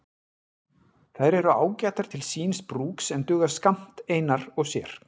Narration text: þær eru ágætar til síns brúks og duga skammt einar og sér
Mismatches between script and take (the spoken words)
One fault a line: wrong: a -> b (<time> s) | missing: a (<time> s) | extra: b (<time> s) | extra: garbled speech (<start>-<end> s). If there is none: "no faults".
wrong: og -> en (3.2 s)